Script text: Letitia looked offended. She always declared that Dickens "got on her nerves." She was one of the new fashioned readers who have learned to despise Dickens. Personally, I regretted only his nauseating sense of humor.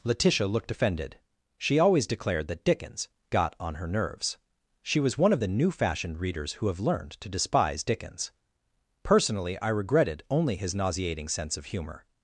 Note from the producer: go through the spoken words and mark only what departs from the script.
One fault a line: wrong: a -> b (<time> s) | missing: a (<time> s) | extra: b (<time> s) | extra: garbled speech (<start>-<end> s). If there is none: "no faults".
no faults